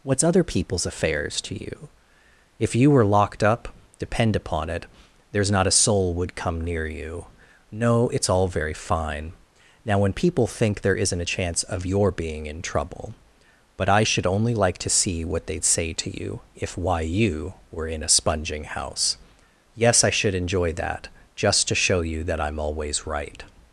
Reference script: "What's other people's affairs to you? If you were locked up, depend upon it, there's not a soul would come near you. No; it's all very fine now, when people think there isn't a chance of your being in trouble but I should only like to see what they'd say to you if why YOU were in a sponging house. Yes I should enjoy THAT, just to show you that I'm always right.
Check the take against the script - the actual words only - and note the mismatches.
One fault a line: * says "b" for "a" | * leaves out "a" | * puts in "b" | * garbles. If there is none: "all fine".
all fine